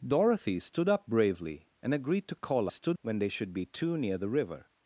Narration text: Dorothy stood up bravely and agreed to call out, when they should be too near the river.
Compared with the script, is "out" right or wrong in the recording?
wrong